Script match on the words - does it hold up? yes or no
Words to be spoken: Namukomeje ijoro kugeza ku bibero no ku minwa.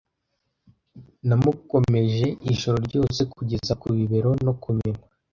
no